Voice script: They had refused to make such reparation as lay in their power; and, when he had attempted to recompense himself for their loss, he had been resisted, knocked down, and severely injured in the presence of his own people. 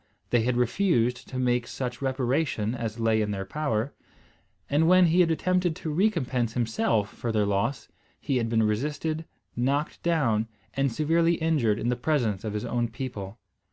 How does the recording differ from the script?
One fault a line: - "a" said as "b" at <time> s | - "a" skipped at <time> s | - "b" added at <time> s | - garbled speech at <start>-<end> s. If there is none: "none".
none